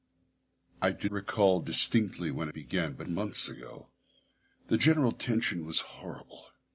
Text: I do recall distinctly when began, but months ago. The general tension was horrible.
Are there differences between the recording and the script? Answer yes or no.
no